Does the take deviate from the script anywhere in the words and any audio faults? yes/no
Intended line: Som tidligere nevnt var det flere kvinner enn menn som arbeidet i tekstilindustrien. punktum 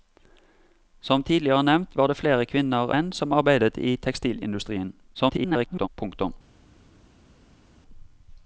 yes